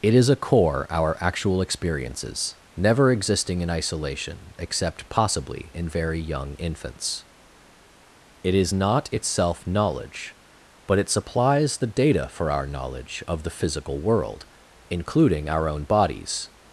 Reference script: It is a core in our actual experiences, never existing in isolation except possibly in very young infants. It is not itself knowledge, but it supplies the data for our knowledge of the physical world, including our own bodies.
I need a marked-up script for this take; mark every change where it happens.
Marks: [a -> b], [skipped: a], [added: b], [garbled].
It is a core [skipped: in] our actual experiences, never existing in isolation except possibly in very young infants. It is not itself knowledge, but it supplies the data for our knowledge of the physical world, including our own bodies.